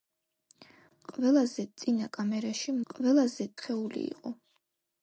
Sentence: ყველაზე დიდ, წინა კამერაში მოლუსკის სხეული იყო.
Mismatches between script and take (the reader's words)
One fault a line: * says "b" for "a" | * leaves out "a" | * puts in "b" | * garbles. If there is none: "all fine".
* leaves out "დიდ"
* says "ყველაზე" for "მოლუსკის"